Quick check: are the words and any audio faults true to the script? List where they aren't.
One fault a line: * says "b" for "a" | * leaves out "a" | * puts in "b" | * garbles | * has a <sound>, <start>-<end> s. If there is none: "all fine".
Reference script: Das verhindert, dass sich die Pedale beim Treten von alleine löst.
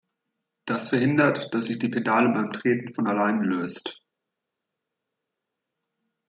all fine